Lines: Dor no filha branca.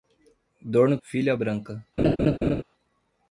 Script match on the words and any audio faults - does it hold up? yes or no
no